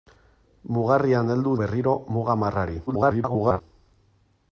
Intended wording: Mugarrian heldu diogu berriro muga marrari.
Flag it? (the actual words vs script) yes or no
yes